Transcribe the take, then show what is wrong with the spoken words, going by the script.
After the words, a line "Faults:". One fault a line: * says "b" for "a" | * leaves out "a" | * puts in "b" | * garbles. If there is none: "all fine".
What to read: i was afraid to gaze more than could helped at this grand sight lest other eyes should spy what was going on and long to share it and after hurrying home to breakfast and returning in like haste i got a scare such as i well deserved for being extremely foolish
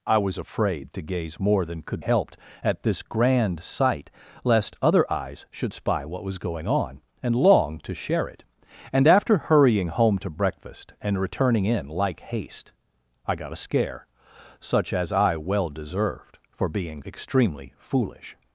i was afraid to gaze more than could helped at this grand sight lest other eyes should spy what was going on and long to share it and after hurrying home to breakfast and returning in like haste i got a scare such as i well deserved for being extremely foolish
Faults:
all fine